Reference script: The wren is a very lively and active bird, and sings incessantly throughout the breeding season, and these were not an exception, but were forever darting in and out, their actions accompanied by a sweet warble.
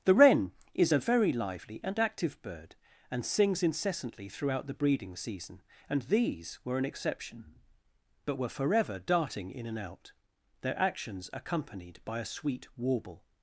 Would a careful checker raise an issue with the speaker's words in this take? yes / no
yes